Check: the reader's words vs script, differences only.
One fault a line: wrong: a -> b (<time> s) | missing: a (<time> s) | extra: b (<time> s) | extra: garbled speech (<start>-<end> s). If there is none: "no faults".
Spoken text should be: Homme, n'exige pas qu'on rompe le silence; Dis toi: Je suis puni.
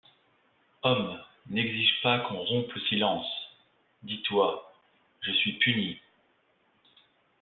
no faults